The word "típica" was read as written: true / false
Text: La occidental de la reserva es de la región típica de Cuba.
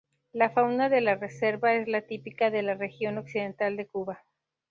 false